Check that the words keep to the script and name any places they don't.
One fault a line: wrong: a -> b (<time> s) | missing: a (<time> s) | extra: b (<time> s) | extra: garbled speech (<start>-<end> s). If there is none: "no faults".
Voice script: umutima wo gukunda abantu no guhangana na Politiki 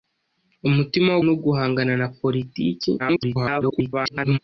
missing: gukunda abantu (1.2 s)
extra: garbled speech (3.0-4.4 s)